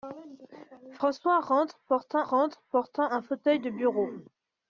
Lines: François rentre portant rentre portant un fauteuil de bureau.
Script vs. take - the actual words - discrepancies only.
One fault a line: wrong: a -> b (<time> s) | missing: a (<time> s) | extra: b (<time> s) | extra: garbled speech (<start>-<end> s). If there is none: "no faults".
no faults